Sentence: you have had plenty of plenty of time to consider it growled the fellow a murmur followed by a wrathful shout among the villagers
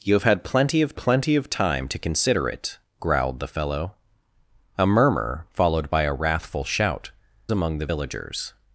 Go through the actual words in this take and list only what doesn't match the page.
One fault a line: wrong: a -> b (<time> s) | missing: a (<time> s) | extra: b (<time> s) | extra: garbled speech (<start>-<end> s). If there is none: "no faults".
no faults